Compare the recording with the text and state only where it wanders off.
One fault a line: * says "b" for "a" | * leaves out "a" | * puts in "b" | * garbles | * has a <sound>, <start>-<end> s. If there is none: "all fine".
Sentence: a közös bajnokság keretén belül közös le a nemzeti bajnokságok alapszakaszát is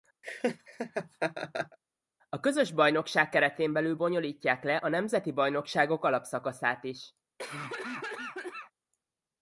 * has a laugh, 0.2-1.8 s
* says "bonyolítják" for "közös"
* has a cough, 7.4-8.7 s